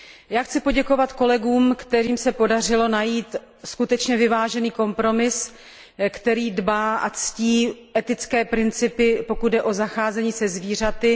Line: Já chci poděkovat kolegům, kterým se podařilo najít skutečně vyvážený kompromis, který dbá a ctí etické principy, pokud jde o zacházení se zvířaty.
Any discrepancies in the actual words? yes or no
no